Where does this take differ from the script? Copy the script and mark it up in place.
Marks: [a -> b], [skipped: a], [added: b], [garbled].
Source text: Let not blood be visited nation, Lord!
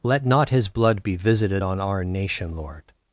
Let not [added: his] blood be visited [added: on our] nation, Lord!